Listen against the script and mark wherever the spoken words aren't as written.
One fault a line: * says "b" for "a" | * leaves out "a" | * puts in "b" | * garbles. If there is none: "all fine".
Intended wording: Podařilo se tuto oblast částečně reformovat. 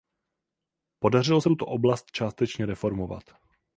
all fine